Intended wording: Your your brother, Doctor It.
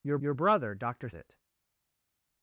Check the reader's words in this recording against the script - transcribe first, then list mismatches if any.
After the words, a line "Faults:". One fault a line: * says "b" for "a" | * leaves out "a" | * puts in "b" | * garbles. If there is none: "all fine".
Your your brother, Doctor It.
Faults:
all fine